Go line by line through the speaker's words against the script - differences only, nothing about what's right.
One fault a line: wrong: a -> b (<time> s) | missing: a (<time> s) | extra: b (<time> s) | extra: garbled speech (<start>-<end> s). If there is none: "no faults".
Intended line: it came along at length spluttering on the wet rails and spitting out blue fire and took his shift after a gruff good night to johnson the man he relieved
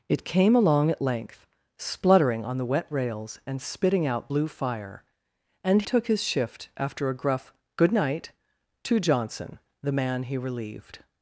no faults